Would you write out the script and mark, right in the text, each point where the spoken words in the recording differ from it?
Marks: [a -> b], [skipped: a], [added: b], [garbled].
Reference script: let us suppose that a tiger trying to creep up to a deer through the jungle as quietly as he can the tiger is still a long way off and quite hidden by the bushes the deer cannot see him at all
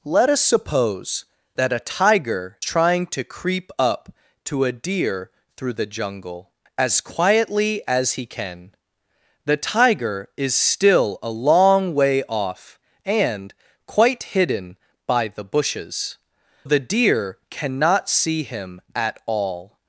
let us suppose that a tiger trying to creep up to a deer through the jungle as quietly as he can the tiger is still a long way off and quite hidden by the bushes the deer cannot see him at all